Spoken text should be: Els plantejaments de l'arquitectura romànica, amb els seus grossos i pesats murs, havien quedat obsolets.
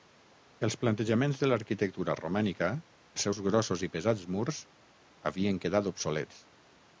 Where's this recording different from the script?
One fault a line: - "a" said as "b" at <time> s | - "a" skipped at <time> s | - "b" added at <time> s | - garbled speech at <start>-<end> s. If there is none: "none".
- "amb" skipped at 2.7 s